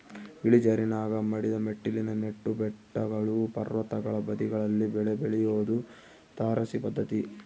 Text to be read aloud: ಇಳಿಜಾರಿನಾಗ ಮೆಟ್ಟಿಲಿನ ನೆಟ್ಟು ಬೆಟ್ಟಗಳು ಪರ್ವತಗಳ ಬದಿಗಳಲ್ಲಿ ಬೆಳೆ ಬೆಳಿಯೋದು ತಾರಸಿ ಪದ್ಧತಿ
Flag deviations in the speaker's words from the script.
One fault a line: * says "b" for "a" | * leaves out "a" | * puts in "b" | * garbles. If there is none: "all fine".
* puts in "ಮಡಿದ"